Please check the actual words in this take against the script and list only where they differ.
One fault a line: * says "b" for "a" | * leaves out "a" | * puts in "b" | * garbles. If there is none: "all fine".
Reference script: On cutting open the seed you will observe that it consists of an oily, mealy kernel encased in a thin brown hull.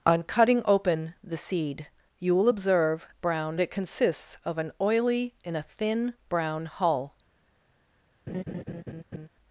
* says "brown" for "that"
* leaves out "mealy kernel encased"